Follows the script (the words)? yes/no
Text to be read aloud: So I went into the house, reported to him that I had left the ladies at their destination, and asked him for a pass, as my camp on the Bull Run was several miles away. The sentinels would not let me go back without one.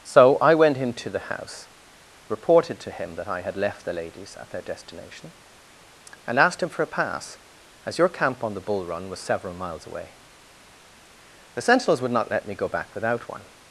no